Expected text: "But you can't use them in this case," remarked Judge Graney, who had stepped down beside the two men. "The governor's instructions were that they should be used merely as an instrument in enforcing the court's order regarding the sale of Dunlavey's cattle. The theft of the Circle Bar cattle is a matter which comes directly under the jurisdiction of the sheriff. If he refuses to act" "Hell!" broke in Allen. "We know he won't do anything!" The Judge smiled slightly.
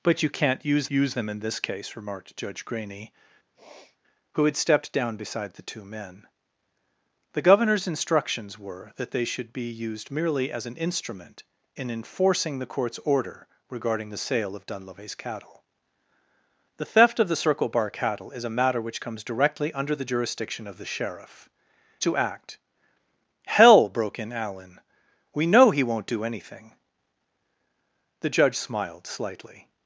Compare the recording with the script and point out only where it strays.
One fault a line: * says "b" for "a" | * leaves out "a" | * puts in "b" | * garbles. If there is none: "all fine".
* puts in "use"
* leaves out "If he refuses"